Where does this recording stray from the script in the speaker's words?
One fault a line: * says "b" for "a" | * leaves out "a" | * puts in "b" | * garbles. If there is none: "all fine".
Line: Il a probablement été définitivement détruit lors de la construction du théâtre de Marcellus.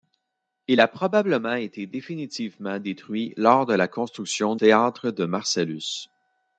* leaves out "du"